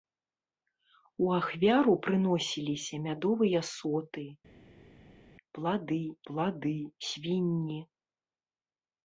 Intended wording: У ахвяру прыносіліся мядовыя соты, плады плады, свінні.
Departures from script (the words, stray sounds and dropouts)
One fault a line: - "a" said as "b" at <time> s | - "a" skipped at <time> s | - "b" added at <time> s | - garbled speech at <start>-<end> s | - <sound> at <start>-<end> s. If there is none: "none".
none